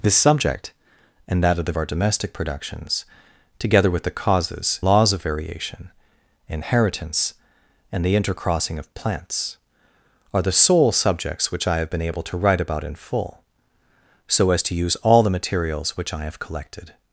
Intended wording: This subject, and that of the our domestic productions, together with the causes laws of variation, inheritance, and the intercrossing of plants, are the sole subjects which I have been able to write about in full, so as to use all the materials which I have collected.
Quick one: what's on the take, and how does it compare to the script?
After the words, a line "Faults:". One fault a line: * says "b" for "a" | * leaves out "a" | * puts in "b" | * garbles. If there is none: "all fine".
This subject, and that of the our domestic productions, together with the causes laws of variation, inheritance, and the intercrossing of plants, are the sole subjects which I have been able to write about in full, so as to use all the materials which I have collected.
Faults:
all fine